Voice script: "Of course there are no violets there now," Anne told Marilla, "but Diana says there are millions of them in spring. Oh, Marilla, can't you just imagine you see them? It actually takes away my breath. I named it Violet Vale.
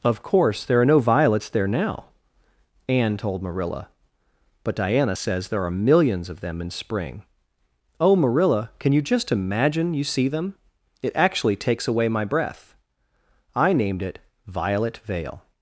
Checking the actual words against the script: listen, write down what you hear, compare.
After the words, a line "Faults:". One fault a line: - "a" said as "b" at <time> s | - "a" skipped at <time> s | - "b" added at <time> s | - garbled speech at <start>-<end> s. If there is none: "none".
"Of course there are no violets there now," Anne told Marilla, "but Diana says there are millions of them in spring. Oh, Marilla, can you just imagine you see them? It actually takes away my breath. I named it Violet Vale.
Faults:
- "can't" said as "can" at 8.8 s